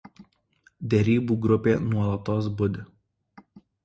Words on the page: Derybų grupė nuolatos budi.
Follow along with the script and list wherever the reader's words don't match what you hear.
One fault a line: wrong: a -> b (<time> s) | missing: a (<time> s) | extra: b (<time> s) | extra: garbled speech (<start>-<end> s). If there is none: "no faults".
no faults